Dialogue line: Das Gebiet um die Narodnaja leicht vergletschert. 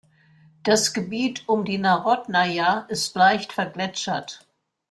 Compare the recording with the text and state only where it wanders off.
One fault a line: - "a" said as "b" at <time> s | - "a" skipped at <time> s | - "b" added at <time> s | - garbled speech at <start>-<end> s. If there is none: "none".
- "ist" added at 2.9 s